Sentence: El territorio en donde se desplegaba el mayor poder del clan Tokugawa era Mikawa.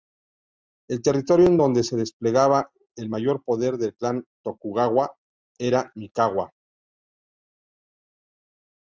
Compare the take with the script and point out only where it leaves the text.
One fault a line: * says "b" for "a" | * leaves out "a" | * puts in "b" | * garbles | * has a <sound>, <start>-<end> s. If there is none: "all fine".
all fine